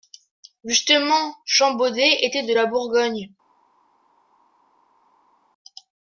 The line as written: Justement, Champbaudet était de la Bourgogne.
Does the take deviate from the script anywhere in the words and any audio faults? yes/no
no